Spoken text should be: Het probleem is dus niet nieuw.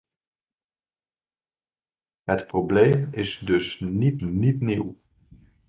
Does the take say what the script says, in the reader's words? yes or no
no